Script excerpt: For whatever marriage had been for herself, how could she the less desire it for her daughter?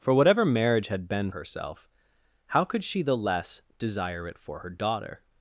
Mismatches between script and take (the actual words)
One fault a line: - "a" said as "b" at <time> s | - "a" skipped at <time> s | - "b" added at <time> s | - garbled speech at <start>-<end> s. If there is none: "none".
- "for" skipped at 1.3 s